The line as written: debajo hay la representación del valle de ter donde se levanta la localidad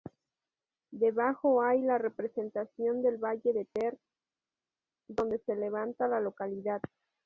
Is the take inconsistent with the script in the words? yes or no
no